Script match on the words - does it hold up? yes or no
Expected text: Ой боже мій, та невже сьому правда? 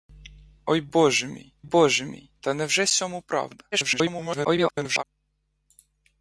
no